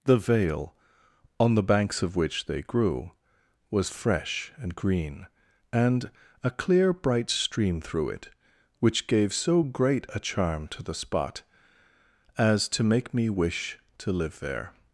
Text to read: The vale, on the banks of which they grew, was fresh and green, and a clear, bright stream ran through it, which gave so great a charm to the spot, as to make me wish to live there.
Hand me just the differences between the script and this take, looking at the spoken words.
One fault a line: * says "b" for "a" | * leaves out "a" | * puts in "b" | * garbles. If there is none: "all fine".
* leaves out "ran"